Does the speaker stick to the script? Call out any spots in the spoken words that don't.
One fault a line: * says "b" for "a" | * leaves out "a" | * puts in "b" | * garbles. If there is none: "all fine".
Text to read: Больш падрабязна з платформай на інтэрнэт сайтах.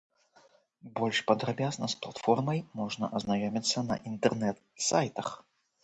* puts in "можна азнаёміцца"